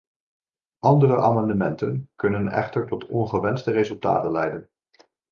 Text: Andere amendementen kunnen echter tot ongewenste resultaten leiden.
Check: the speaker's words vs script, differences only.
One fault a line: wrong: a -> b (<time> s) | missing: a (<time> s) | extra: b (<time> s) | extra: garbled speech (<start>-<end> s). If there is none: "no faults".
no faults